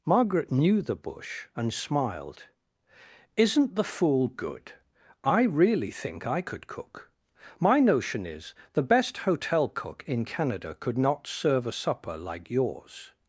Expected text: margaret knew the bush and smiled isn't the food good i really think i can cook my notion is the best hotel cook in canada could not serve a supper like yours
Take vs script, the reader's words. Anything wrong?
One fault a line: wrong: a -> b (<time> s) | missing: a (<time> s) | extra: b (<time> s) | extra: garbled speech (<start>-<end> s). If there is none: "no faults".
wrong: food -> fool (3.8 s)
wrong: can -> could (6.4 s)